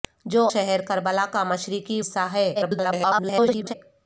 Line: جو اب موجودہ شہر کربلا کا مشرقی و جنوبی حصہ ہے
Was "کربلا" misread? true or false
false